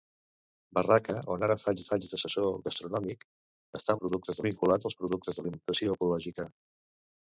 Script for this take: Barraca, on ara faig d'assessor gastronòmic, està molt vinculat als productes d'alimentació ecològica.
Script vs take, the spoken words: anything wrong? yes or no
yes